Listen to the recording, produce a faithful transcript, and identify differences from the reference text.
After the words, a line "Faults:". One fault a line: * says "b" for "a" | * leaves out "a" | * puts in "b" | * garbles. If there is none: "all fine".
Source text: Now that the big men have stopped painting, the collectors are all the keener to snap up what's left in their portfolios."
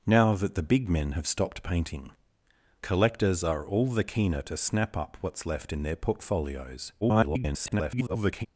Now that the big men have stopped painting, collectors are all the keener to snap up what's left in their portfolios." [garbled]
Faults:
* leaves out "the"
* garbles